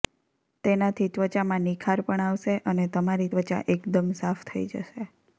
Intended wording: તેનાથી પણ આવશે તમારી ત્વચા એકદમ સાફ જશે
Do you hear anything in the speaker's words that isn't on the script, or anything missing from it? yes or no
yes